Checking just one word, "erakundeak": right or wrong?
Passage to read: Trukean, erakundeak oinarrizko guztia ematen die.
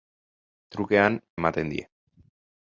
wrong